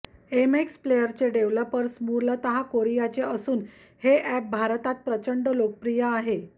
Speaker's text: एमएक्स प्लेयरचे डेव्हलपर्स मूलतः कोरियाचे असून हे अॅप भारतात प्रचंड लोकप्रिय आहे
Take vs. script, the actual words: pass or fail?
pass